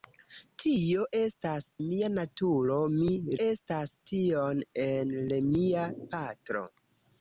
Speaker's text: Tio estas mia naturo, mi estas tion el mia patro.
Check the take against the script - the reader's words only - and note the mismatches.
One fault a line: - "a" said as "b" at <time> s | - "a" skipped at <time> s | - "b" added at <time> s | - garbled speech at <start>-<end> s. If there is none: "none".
none